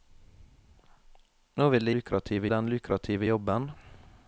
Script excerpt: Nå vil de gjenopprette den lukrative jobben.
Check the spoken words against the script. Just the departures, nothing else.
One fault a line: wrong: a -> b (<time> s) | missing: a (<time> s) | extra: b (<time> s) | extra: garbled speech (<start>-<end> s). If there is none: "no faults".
wrong: gjenopprette -> lukrative (1.9 s)